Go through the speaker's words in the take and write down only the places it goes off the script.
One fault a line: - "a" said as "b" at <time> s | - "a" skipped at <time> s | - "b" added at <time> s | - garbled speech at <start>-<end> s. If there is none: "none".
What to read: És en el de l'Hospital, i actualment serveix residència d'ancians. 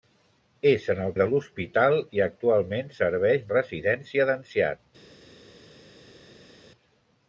none